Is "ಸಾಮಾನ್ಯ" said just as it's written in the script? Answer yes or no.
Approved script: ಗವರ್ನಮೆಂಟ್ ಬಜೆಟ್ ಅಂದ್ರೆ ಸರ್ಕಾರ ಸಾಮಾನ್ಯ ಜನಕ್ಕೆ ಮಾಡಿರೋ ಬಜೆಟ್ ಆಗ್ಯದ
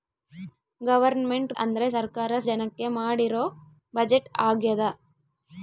no